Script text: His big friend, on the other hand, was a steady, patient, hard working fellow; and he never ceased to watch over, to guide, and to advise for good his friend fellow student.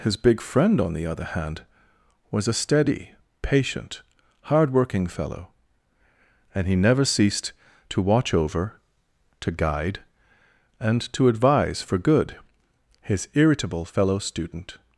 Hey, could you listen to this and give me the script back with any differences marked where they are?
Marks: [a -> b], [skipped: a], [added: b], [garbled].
His big friend, on the other hand, was a steady, patient, hard working fellow; and he never ceased to watch over, to guide, and to advise for good his [friend -> irritable] fellow student.